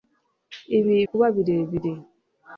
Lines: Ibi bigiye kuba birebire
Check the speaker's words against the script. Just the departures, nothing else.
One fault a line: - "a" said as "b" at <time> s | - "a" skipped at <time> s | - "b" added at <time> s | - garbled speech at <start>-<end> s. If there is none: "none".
- "bigiye" skipped at 0.9 s